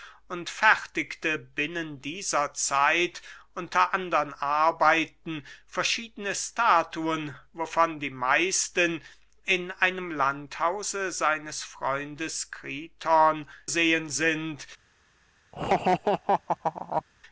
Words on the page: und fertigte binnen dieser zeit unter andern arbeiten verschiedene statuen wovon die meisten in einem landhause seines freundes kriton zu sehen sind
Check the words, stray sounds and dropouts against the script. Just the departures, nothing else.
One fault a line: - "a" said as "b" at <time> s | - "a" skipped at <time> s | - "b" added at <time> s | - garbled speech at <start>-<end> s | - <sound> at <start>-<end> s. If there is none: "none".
- "zu" skipped at 13.5 s
- laugh at 15.5-17.0 s